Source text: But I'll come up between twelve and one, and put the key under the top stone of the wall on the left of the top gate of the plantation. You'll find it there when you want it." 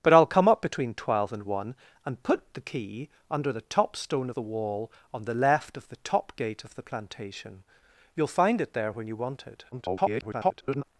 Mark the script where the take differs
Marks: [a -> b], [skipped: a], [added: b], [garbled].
But I'll come up between twelve and one, and put the key under the top stone [skipped: of] the wall on the left of the top gate of the plantation. You'll find it there when you want it." [garbled]